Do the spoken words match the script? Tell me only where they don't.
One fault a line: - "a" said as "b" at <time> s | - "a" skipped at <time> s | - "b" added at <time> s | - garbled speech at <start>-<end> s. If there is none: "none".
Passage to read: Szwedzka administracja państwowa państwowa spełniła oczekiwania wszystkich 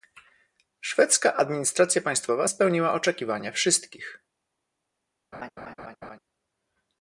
- "państwowa" skipped at 2.5 s